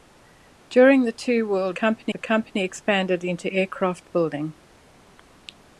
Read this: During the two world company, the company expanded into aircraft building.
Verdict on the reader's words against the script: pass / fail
pass